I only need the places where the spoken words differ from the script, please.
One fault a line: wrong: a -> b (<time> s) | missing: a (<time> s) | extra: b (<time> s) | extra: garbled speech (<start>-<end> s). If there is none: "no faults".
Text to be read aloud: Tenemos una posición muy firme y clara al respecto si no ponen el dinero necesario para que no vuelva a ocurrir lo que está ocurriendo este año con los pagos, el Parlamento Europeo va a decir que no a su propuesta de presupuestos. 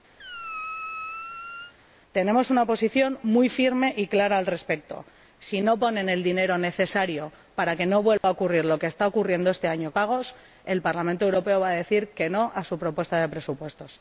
missing: con los (9.9 s)